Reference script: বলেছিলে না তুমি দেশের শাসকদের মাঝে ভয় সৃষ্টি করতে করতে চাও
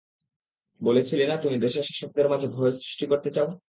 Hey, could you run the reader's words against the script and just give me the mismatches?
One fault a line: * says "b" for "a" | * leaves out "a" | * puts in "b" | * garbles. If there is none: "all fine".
* leaves out "করতে"